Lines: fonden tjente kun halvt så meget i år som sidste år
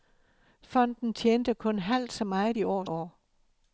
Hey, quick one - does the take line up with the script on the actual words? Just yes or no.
no